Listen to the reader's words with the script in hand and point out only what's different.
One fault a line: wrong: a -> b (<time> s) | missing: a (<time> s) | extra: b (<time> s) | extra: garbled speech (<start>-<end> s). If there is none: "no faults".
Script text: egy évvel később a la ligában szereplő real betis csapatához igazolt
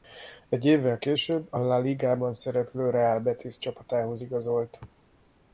no faults